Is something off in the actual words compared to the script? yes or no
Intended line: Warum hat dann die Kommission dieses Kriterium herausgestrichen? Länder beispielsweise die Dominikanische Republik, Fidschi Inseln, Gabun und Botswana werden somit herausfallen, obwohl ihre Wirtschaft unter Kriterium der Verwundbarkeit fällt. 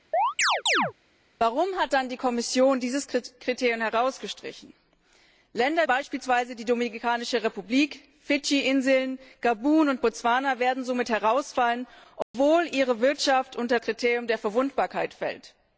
no